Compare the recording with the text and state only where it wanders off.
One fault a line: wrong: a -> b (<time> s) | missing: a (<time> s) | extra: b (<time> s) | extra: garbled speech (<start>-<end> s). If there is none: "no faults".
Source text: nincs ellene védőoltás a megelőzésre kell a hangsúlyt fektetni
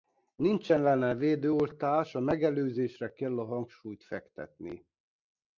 no faults